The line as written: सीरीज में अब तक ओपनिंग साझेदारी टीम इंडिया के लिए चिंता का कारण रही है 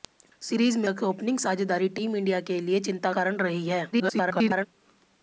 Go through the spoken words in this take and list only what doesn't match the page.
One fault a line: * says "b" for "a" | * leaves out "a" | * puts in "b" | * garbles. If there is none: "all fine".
* leaves out "अब"
* leaves out "का"
* garbles